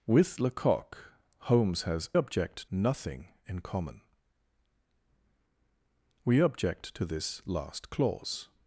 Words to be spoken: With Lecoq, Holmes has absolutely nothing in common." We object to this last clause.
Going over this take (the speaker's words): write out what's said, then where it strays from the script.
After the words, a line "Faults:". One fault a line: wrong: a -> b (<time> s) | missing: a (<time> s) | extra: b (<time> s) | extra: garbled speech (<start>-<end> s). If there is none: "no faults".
With Lecoq, Holmes has object nothing in common." We object to this last clause.
Faults:
wrong: absolutely -> object (2.1 s)